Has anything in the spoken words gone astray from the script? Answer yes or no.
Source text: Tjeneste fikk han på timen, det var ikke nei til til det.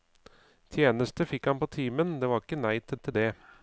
no